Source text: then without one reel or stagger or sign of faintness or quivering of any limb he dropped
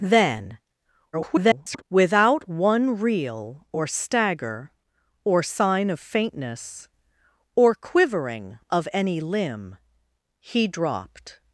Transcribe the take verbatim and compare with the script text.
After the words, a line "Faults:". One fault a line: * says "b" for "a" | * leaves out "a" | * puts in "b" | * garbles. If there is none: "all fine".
then [garbled] without one reel or stagger or sign of faintness or quivering of any limb he dropped
Faults:
* garbles